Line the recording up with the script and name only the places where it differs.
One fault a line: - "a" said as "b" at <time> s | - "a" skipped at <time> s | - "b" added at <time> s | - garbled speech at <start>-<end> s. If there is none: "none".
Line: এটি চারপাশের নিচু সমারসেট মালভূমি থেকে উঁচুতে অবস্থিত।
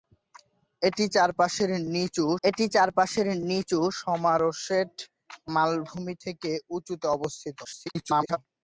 - "এটি চারপাশের নিচু" added at 2.4 s
- garbled speech at 7.6-8.4 s